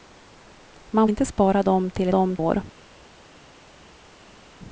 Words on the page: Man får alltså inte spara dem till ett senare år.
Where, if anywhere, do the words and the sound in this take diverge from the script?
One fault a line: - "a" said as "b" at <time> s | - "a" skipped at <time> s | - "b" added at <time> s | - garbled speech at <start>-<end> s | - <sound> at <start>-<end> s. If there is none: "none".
- "får alltså" skipped at 1.1 s
- "senare" said as "dem" at 2.1 s